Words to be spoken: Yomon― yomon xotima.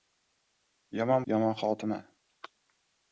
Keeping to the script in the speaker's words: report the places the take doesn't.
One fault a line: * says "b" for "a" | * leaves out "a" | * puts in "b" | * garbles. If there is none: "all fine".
all fine